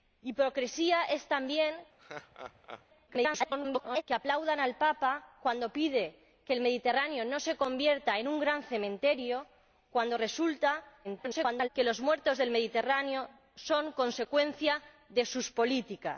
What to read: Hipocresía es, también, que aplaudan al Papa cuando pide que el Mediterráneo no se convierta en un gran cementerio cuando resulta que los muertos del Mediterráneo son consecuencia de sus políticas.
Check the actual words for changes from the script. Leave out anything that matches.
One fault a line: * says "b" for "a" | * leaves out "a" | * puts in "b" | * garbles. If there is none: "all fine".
* garbles
* garbles